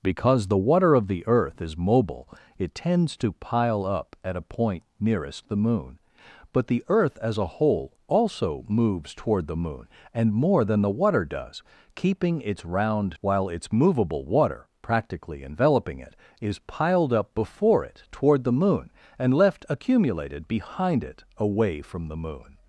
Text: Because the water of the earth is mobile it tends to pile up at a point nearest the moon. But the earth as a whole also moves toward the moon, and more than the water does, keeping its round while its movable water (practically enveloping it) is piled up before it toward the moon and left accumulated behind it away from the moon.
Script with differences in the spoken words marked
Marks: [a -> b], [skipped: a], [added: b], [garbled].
Because the water of the earth is mobile it tends to pile up at a point nearest the moon. But the earth as a whole also moves toward the moon, and more than the water does, keeping its round while its movable water (practically enveloping it) is piled up before it toward the moon and left accumulated behind it away from the moon.